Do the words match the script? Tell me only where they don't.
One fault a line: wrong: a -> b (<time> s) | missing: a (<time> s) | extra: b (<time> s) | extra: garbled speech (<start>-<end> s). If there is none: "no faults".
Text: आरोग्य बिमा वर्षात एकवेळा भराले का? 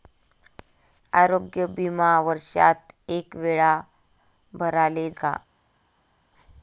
no faults